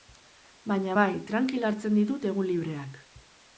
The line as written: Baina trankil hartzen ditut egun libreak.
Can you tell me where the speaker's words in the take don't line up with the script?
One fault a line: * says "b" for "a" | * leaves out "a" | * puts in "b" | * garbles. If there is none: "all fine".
* puts in "bai"